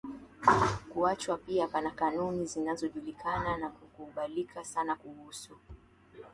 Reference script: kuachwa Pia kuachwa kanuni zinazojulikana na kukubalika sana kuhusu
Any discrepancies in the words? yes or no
yes